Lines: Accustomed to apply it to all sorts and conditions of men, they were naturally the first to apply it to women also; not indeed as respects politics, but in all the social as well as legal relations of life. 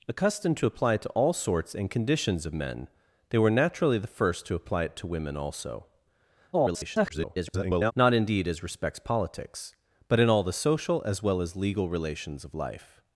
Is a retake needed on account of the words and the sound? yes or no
yes